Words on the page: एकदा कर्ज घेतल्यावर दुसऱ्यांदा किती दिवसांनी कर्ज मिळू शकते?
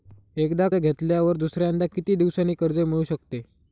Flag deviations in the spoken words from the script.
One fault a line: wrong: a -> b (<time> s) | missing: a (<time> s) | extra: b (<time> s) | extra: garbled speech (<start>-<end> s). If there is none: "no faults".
missing: कर्ज (0.7 s)